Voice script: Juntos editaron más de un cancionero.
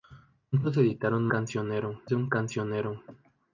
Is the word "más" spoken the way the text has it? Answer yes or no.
no